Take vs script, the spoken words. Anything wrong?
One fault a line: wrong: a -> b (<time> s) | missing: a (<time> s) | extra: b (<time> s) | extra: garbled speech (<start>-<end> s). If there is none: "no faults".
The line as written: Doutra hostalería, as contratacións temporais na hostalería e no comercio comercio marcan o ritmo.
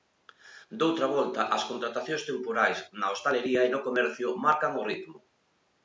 wrong: hostalería -> volta (1.1 s)
missing: comercio (4.3 s)